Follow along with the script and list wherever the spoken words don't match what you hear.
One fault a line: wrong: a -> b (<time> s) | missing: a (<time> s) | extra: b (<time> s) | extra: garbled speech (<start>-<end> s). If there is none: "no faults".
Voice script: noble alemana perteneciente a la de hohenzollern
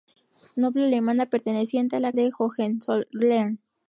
no faults